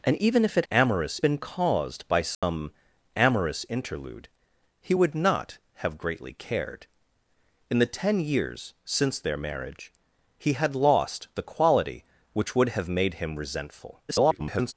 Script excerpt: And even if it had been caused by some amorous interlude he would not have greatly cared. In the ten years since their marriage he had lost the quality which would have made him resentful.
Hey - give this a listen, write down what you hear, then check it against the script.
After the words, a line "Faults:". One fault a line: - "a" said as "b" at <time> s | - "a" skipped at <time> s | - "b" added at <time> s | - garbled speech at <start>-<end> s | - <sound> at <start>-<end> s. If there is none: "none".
And even if it amorous been caused by some amorous interlude he would not have greatly cared. In the ten years since their marriage he had lost the quality which would have made him resentful. [garbled]
Faults:
- "had" said as "amorous" at 0.7 s
- dropout at 2.3-2.4 s
- garbled speech at 14.1-14.7 s